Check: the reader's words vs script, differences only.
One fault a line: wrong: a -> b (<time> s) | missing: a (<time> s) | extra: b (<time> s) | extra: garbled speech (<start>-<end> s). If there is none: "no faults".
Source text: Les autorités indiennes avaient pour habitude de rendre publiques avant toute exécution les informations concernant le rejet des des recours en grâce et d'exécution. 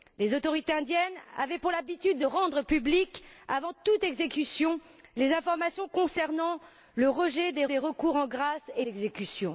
no faults